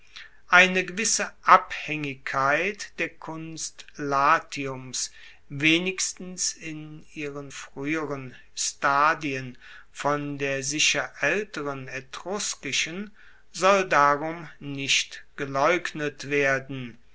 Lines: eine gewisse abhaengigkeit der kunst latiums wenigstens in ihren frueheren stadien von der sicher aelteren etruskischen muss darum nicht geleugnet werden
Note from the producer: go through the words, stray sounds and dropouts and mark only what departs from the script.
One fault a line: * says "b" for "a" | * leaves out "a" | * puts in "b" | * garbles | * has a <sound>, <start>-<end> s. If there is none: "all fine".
* says "soll" for "muss"